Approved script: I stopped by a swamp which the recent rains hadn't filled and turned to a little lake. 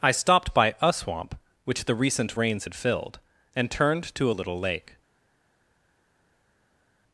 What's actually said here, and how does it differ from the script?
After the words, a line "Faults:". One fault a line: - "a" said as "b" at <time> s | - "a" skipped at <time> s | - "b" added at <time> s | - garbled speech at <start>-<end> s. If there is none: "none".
I stopped by a swamp which the recent rains had filled and turned to a little lake.
Faults:
- "hadn't" said as "had" at 2.6 s